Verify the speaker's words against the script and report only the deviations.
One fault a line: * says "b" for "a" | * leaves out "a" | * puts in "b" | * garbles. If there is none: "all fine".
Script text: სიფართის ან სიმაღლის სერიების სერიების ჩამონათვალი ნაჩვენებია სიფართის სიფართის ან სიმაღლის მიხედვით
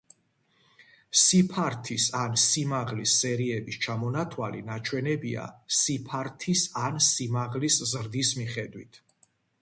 * leaves out "სერიების"
* leaves out "სიფართის"
* puts in "ზრდის"